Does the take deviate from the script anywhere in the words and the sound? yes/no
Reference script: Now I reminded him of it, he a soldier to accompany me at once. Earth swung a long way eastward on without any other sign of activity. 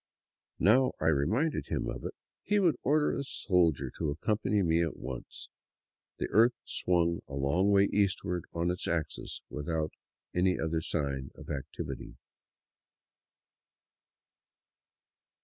yes